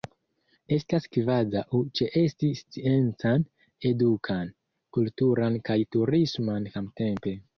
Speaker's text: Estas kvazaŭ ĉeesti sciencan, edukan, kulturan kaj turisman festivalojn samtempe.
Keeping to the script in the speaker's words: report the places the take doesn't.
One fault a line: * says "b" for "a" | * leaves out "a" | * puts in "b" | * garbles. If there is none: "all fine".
* leaves out "festivalojn"